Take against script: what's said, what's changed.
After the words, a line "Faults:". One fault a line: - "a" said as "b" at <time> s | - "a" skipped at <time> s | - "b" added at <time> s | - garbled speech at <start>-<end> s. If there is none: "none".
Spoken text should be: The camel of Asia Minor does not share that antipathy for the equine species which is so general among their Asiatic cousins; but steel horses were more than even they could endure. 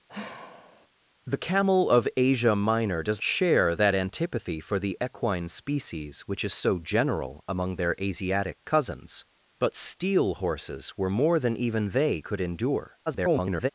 The camel of Asia Minor does share that antipathy for the equine species which is so general among their Asiatic cousins; but steel horses were more than even they could endure. [garbled]
Faults:
- "not" skipped at 3.2 s
- garbled speech at 13.1-13.7 s